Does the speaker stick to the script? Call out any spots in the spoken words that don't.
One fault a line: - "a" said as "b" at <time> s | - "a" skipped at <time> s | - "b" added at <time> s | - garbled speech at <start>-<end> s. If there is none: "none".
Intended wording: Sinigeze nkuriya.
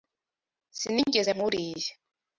none